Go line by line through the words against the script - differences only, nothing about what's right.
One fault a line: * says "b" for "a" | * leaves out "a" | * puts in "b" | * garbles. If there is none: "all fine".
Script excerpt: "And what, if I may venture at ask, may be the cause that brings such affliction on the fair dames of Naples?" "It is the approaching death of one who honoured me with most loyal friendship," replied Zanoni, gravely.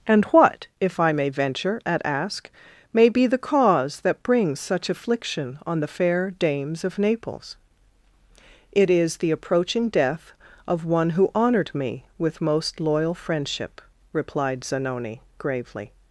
all fine